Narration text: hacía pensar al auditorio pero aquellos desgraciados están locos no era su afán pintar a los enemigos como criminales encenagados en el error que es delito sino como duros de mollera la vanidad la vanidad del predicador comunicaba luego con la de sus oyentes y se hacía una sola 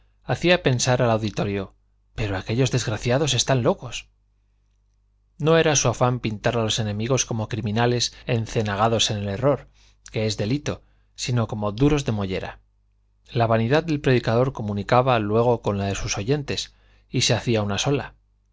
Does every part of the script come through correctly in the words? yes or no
no